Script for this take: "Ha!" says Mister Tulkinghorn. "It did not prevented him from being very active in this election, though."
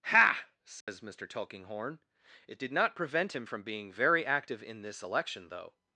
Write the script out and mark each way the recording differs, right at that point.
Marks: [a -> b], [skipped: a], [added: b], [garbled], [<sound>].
"Ha!" says [dropout] Mister Tulkinghorn. "It did not [prevented -> prevent] him from being very active in this election, though."